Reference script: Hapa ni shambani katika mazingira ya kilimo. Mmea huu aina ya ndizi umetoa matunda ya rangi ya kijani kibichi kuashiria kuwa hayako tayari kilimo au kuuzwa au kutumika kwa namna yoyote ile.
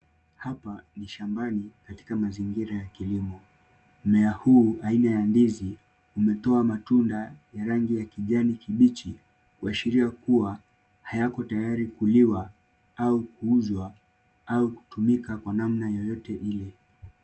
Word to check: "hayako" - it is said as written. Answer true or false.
true